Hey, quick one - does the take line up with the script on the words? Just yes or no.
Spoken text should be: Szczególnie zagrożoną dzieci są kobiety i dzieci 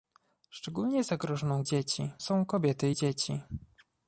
yes